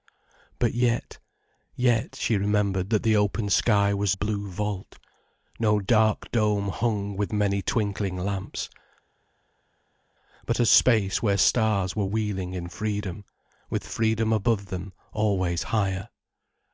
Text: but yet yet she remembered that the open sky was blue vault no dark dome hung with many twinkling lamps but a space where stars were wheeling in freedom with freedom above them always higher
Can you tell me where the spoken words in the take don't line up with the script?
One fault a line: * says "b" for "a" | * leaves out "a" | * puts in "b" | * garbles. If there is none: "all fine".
all fine